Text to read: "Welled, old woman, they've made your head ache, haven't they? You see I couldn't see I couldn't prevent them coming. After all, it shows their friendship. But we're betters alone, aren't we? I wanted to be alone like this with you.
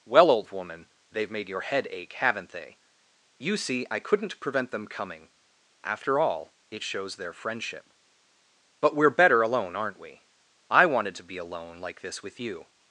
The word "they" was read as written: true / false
true